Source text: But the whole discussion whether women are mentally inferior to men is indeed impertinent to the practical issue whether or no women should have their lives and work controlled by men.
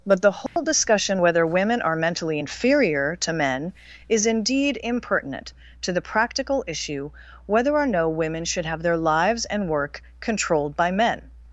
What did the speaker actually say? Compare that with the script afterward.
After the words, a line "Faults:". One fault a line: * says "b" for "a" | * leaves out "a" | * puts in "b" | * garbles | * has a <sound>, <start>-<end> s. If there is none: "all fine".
But the whole discussion whether women are mentally inferior to men is indeed impertinent to the practical issue whether or no women should have their lives and work controlled by men.
Faults:
* has a dropout, 0.5-0.6 s